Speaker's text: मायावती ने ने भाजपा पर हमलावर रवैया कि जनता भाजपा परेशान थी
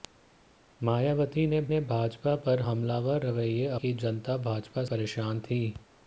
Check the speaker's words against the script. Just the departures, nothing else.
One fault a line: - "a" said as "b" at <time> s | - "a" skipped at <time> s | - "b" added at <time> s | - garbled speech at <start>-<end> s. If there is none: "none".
none